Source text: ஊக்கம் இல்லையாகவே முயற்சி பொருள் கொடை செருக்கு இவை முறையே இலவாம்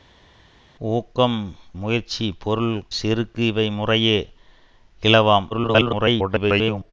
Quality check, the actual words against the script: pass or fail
fail